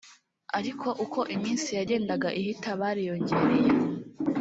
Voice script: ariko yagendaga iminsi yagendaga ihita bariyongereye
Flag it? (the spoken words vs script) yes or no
yes